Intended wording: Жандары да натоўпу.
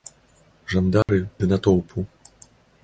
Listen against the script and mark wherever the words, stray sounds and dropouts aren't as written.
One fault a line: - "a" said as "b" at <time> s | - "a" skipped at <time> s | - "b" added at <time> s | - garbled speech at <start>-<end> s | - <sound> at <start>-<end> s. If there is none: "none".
- dropout at 1.0-1.1 s